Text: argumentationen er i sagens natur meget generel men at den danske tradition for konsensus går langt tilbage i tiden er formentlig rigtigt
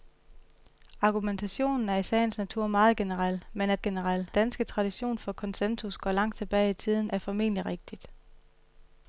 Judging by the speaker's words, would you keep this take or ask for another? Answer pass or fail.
fail